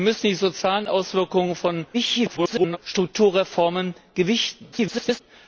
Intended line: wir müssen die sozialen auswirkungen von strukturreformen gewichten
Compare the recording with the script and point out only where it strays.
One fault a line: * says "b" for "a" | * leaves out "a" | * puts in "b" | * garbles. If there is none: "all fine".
* garbles
* garbles